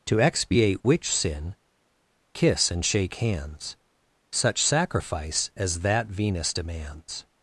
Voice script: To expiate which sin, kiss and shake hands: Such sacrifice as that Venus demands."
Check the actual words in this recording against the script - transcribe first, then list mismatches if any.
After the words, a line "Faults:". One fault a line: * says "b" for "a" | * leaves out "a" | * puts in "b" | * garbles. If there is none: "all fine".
To expiate which sin, kiss and shake hands: Such sacrifice as that Venus demands."
Faults:
all fine